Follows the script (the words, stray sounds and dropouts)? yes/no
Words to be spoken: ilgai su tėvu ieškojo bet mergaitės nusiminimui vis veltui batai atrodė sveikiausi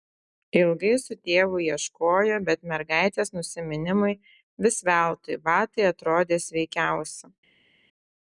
yes